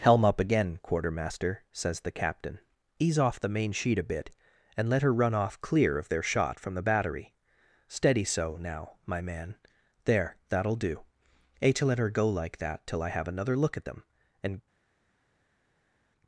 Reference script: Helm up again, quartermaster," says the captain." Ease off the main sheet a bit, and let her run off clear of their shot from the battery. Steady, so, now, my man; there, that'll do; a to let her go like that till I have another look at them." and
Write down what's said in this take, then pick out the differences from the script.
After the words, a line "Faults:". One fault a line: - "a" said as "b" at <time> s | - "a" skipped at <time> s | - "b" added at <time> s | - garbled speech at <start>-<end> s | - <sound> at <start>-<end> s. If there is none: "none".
Helm up again, quartermaster," says the captain." Ease off the main sheet a bit, and let her run off clear of their shot from the battery. Steady, so, now, my man; there, that'll do; a to let her go like that till I have another look at them." and
Faults:
none